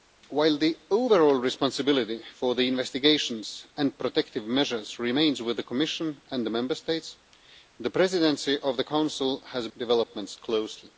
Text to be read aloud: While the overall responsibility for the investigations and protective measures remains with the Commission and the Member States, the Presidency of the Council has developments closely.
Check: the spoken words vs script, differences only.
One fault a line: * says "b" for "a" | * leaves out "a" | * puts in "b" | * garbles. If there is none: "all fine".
all fine